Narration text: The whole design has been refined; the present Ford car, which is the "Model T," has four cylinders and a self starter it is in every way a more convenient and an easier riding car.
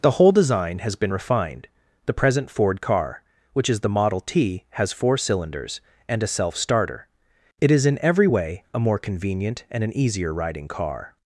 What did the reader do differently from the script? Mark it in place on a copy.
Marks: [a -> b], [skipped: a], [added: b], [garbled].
The whole design has been refined; the present Ford car, which is the "Model T," has four cylinders and a self starter it is in every way a more convenient and an easier riding car.